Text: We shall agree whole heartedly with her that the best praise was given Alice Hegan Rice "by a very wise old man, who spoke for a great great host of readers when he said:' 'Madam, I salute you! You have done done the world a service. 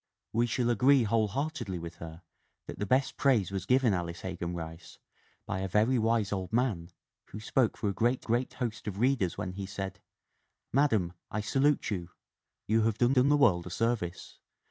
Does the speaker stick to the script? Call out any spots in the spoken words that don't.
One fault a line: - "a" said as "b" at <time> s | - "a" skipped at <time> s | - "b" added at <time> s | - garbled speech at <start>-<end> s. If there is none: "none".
none